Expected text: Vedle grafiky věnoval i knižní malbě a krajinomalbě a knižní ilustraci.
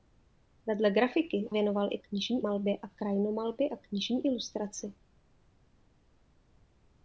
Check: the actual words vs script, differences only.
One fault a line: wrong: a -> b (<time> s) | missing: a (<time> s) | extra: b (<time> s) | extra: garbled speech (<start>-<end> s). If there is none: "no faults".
no faults